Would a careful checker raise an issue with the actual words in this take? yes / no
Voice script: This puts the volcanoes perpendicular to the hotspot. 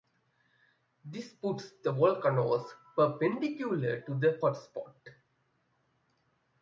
no